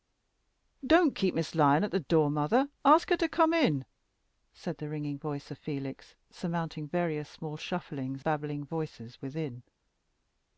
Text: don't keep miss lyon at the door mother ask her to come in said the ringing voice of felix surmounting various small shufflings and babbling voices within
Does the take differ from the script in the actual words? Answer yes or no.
yes